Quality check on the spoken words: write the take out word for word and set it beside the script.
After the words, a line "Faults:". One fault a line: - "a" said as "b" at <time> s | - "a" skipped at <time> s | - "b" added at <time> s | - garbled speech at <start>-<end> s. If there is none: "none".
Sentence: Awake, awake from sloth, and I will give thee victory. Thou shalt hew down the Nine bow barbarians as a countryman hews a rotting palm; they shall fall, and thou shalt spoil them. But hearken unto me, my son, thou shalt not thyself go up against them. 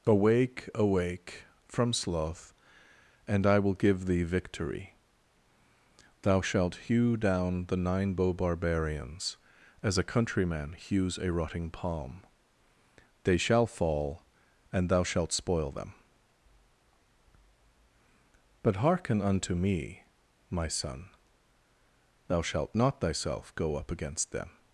Awake, awake from sloth, and I will give thee victory. Thou shalt hew down the Nine bow barbarians as a countryman hews a rotting palm; they shall fall, and thou shalt spoil them. But hearken unto me, my son, thou shalt not thyself go up against them.
Faults:
none